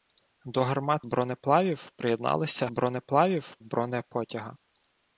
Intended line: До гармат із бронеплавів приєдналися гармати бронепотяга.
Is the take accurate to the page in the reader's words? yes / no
no